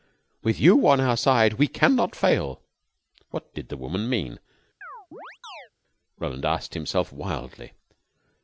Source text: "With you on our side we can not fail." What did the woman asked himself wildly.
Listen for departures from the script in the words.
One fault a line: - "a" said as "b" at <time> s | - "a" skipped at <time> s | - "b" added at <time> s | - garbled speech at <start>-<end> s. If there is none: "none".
- "mean Roland" added at 4.1 s